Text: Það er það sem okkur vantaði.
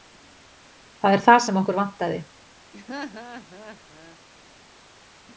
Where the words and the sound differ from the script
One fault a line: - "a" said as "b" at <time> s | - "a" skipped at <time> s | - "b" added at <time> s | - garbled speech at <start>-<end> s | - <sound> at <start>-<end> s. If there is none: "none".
- laugh at 2.7-4.2 s